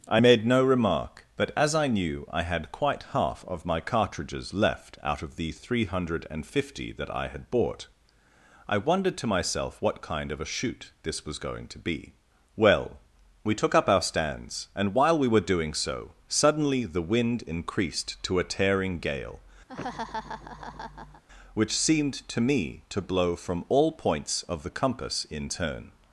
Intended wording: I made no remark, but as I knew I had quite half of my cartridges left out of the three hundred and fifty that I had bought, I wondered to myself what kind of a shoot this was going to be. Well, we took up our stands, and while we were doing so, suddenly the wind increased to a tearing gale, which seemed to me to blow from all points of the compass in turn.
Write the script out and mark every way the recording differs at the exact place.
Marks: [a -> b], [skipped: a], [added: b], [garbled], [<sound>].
I made no remark, but as I knew I had quite half of my cartridges left out of the three hundred and fifty that I had bought, I wondered to myself what kind of a shoot this was going to be. Well, we took up our stands, and while we were doing so, suddenly the wind increased to a tearing gale, [laugh] which seemed to me to blow from all points of the compass in turn.